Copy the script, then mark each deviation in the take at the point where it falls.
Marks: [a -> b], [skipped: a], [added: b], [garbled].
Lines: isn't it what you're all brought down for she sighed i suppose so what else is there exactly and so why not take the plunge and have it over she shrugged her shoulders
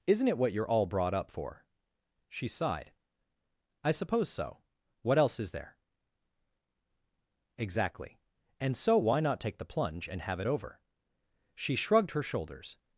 isn't it what you're all brought [down -> up] for she sighed i suppose so what else is there exactly and so why not take the plunge and have it over she shrugged her shoulders